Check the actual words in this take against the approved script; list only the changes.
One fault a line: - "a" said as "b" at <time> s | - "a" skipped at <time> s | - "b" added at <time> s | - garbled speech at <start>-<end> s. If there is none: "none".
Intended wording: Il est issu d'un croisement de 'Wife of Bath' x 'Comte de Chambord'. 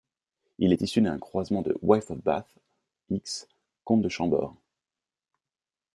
none